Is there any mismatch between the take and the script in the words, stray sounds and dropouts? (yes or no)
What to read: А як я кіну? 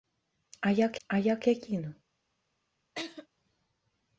yes